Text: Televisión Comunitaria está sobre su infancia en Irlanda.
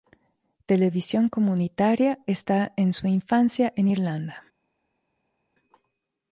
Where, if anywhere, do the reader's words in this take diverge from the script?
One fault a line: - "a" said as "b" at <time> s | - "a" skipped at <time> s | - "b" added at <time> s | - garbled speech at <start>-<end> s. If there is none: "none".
- "sobre" said as "en" at 2.8 s